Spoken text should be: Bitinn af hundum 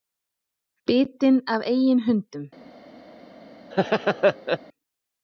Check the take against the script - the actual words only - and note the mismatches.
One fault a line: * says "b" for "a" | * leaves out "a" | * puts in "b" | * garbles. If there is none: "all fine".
* puts in "eigin"